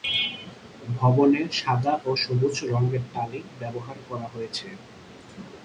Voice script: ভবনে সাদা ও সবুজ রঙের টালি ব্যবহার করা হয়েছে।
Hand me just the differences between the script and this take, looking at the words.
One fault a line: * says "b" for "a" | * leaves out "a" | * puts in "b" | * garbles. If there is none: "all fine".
all fine